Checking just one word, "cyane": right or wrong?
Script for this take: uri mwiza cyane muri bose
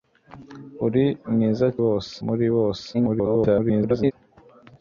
wrong